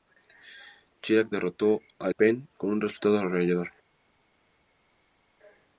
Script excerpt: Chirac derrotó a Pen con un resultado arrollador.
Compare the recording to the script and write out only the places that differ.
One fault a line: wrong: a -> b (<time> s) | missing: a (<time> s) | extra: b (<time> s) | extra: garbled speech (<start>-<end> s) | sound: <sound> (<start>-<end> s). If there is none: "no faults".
no faults